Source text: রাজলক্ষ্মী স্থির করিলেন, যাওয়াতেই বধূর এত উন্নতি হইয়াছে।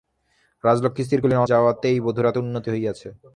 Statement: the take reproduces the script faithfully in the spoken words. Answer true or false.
true